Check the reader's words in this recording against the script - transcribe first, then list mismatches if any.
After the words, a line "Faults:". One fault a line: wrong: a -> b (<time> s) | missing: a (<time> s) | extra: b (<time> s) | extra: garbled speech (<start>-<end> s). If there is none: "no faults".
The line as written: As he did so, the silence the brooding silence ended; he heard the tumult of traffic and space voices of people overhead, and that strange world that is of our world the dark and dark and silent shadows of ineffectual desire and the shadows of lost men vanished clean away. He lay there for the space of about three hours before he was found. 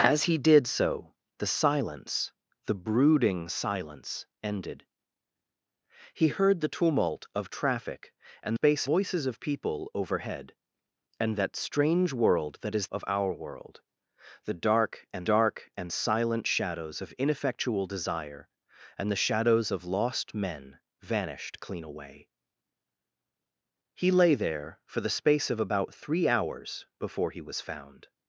As he did so, the silence the brooding silence ended; he heard the tumult of traffic and space voices of people overhead, and that strange world that is of our world the dark and dark and silent shadows of ineffectual desire and the shadows of lost men vanished clean away. He lay there for the space of about three hours before he was found.
Faults:
no faults